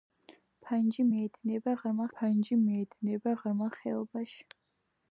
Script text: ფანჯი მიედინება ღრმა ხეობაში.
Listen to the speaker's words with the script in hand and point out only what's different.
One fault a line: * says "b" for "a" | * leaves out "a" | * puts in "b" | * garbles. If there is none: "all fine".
* puts in "ფანჯი მიედინება ღრმა"